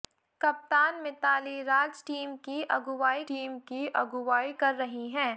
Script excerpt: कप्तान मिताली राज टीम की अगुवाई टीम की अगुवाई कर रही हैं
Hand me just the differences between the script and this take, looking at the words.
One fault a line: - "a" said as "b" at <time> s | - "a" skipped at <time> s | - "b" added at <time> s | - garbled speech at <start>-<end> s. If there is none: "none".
none